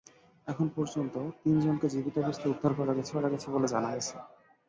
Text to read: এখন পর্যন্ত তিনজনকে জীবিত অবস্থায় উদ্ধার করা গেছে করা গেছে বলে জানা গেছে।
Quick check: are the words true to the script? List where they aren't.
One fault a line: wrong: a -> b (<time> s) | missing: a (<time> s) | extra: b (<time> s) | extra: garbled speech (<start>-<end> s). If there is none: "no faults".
no faults